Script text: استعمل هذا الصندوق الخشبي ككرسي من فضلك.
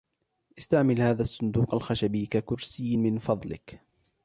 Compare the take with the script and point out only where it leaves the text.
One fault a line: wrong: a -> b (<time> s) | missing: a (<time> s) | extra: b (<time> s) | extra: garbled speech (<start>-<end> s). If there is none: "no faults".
no faults